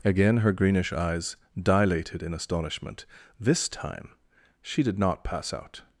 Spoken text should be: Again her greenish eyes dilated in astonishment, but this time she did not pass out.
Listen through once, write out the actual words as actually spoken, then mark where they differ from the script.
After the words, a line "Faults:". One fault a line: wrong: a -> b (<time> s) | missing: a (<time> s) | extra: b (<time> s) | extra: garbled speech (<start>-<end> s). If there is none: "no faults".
Again her greenish eyes dilated in astonishment, this time she did not pass out.
Faults:
missing: but (3.0 s)